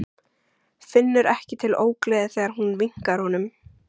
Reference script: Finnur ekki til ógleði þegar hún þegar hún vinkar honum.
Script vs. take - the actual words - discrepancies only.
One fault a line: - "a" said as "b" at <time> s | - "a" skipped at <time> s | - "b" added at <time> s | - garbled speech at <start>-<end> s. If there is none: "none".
- "þegar hún" skipped at 2.7 s